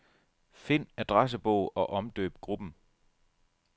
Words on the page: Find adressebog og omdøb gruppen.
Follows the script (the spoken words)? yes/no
yes